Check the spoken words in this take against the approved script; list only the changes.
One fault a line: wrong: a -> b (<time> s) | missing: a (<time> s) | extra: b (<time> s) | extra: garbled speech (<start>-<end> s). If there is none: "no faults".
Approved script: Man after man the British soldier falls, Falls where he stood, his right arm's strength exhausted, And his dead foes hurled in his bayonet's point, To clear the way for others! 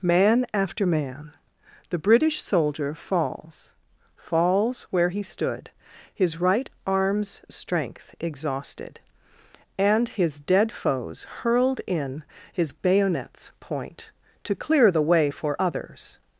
no faults